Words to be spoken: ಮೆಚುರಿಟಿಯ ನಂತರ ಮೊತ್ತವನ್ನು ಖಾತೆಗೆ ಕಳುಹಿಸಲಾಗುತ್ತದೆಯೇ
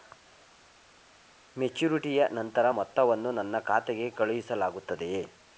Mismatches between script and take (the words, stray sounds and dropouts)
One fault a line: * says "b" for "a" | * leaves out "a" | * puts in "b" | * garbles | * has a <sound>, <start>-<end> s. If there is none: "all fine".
* puts in "ನನ್ನ"